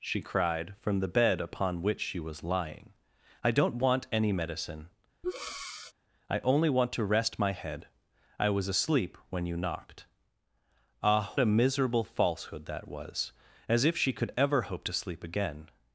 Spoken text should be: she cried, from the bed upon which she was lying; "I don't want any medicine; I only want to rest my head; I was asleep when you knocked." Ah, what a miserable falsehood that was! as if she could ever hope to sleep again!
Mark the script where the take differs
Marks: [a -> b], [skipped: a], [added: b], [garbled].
she cried, from the bed upon which she was lying; "I don't want any medicine; I only want to rest my head; I was asleep when you knocked." Ah, [skipped: what] a miserable falsehood that was! as if she could ever hope to sleep again!